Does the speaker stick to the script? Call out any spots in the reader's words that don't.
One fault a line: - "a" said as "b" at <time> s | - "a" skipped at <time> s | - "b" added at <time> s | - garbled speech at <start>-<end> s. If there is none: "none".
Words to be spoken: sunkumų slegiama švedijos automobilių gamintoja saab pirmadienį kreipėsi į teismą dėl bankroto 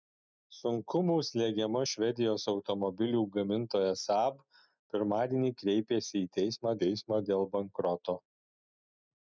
- "teismą" added at 6.8 s